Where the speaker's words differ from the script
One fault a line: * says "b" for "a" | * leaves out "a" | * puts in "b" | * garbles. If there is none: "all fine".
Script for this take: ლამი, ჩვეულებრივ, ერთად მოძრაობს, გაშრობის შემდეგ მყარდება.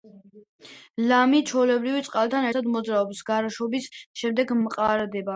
* puts in "წყალთან"